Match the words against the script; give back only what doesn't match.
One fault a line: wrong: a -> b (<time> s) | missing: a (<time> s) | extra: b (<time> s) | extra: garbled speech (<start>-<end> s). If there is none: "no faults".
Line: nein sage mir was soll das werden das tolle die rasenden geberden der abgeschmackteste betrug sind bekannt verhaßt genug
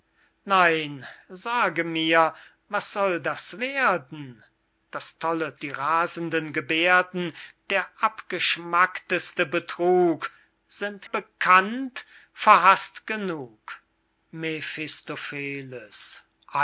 no faults